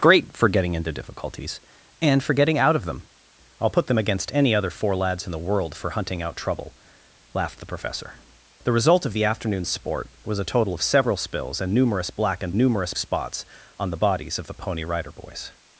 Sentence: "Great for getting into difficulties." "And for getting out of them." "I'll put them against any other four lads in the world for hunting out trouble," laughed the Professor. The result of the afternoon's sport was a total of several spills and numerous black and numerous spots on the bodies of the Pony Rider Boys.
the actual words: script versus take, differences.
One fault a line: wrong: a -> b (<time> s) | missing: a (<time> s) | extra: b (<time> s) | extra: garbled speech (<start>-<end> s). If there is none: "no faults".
no faults